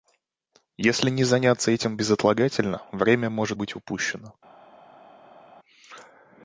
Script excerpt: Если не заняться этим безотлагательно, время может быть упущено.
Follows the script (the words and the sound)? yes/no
yes